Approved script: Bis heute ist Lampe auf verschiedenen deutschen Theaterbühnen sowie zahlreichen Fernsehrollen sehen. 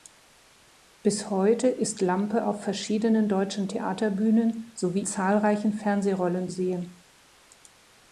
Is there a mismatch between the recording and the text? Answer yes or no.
no